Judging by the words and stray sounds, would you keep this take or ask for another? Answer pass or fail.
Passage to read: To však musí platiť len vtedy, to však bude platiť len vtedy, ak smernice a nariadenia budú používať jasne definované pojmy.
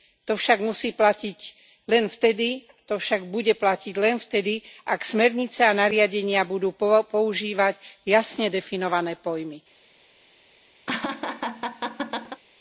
fail